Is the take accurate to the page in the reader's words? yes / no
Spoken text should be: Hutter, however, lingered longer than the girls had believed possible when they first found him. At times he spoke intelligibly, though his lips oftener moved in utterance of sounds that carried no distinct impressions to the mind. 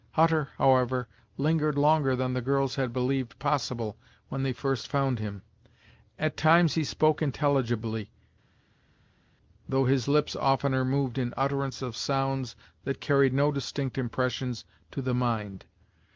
yes